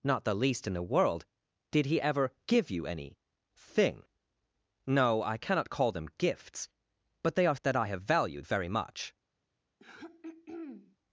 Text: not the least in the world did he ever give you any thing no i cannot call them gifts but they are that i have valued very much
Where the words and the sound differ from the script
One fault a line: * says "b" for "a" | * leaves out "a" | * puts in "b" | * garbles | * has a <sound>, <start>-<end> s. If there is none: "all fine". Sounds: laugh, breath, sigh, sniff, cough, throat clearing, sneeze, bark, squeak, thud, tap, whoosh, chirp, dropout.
* has a throat clearing, 9.8-11.0 s